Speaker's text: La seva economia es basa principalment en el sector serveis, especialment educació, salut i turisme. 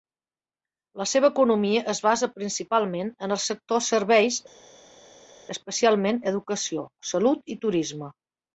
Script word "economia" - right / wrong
right